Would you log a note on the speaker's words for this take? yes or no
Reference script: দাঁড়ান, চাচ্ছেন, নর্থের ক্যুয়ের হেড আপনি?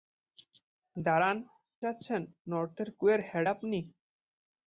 no